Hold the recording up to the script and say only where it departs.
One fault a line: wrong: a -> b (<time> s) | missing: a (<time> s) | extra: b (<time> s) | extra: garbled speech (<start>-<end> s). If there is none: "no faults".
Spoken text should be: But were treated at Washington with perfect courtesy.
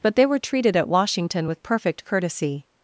extra: they (0.1 s)